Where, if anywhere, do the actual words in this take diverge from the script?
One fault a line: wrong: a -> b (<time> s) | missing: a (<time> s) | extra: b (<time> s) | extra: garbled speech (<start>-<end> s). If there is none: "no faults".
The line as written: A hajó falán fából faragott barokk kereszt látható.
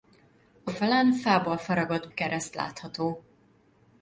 missing: hajó (0.7 s)
missing: barokk (2.1 s)